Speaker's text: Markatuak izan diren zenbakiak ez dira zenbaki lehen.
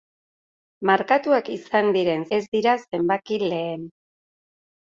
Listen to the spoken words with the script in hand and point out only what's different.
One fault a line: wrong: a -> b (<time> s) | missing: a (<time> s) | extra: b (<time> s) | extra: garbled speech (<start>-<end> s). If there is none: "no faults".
missing: zenbakiak (2.2 s)